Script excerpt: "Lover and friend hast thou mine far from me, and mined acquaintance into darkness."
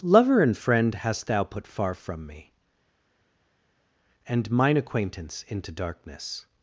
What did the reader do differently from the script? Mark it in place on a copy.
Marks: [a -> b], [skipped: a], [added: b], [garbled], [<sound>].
"Lover and friend hast thou [mine -> put] far from me, and [mined -> mine] acquaintance into darkness."